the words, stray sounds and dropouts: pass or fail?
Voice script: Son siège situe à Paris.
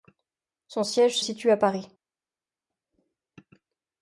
pass